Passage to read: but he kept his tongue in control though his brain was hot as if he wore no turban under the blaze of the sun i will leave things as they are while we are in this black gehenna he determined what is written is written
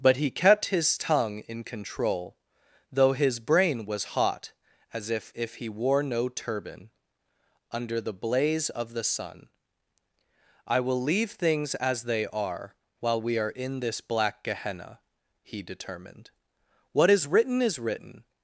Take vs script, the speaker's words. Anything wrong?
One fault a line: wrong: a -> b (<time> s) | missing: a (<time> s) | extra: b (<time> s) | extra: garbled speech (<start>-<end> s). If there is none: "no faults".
extra: if (5.3 s)